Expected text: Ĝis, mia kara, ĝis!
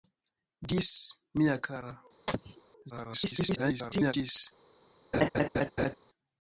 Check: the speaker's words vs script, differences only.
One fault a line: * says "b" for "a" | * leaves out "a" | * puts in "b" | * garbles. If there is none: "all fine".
* garbles